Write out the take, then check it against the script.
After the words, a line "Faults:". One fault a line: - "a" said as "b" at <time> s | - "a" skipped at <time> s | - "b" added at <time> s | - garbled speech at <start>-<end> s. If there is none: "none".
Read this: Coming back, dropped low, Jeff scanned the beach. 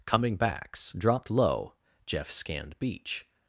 Coming backs, dropped low, Jeff scanned beach.
Faults:
- "back" said as "backs" at 0.3 s
- "the" skipped at 2.8 s